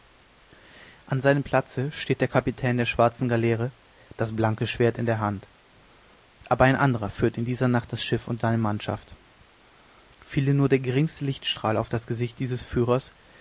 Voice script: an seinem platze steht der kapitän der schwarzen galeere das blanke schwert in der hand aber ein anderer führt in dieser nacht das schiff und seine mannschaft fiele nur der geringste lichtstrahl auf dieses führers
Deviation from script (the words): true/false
true